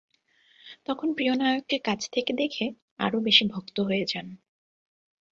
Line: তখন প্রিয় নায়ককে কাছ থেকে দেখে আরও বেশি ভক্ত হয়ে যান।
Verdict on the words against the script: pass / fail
pass